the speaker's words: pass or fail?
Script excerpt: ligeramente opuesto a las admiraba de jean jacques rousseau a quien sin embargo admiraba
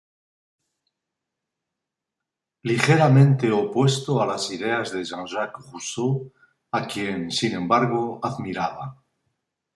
fail